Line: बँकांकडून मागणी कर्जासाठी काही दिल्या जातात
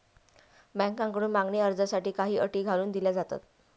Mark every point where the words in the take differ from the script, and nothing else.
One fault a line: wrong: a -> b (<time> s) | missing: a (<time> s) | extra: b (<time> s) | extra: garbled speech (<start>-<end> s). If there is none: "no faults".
extra: अटी घालून (2.4 s)